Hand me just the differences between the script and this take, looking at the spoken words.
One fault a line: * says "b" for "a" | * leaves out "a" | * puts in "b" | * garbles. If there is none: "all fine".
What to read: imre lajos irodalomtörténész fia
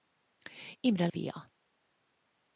* leaves out "lajos irodalomtörténész"